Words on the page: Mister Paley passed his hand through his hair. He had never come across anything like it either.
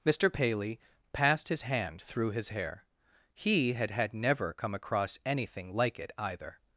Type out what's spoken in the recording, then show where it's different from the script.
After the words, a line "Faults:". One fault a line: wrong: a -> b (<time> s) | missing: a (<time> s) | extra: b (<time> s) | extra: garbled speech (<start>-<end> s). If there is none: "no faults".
Mister Paley passed his hand through his hair. He had had never come across anything like it either.
Faults:
extra: had (3.9 s)